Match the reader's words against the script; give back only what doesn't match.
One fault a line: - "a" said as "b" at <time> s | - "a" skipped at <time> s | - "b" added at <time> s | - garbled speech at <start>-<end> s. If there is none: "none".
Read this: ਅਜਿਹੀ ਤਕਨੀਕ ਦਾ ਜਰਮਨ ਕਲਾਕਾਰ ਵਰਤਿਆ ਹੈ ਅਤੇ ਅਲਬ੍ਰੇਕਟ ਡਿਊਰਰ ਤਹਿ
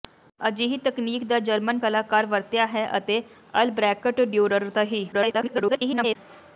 - garbled speech at 5.1-6.2 s